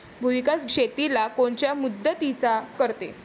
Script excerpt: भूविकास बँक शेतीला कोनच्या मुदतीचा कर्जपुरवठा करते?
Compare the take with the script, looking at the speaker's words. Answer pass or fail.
fail